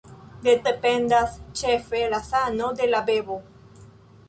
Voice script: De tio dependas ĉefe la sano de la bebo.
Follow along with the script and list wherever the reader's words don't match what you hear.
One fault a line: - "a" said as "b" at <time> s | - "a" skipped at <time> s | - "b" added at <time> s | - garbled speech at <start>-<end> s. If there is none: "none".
- "tio" skipped at 0.5 s